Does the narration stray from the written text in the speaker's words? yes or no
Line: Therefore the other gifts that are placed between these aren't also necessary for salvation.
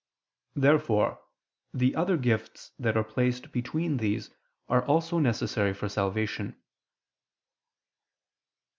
yes